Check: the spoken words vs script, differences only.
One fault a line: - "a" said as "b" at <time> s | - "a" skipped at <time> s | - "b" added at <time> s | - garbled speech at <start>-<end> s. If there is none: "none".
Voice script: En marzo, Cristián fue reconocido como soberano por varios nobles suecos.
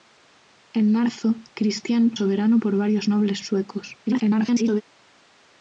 - "fue reconocido como" skipped at 2.2 s
- garbled speech at 4.1-4.8 s